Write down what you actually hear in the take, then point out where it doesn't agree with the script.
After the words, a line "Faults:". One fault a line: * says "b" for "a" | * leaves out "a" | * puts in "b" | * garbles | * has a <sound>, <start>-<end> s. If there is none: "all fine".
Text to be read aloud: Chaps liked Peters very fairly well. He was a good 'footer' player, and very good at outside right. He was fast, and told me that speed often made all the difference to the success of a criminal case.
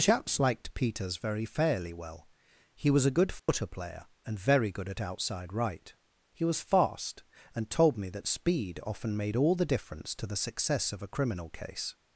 Chaps liked Peters very fairly well. He was a good 'footer' player, and very good at outside right. He was fast, and told me that speed often made all the difference to the success of a criminal case.
Faults:
* has a dropout, 3.4-3.5 s